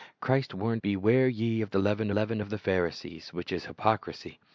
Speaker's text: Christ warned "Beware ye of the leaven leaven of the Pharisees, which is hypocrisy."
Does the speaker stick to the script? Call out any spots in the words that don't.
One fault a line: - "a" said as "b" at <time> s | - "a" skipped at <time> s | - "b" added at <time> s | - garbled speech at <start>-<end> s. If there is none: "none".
none